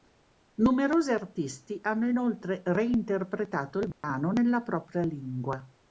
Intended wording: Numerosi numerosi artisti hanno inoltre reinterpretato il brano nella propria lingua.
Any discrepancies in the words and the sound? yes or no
yes